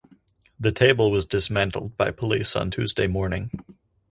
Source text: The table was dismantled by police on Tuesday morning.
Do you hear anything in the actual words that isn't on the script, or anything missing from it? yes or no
no